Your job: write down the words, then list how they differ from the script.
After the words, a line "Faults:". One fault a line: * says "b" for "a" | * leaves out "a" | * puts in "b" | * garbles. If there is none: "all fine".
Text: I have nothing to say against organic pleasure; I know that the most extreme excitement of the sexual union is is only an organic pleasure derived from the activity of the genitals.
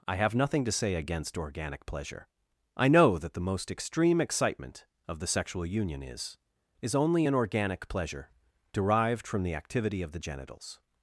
I have nothing to say against organic pleasure; I know that the most extreme excitement of the sexual union is is only an organic pleasure derived from the activity of the genitals.
Faults:
all fine